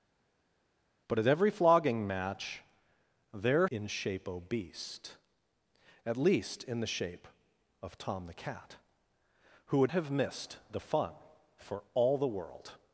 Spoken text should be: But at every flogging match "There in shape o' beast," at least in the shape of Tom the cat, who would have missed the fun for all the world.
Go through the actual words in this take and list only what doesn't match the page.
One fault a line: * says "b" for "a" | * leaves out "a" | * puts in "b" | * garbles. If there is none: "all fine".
all fine